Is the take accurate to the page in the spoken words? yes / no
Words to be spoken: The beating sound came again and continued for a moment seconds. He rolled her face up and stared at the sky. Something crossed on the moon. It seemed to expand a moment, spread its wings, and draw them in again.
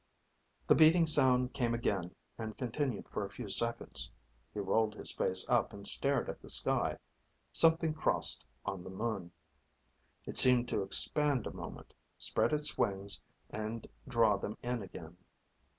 no